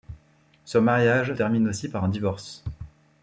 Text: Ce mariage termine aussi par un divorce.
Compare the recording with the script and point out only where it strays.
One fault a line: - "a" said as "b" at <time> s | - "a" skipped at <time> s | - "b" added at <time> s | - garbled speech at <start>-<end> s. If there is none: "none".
none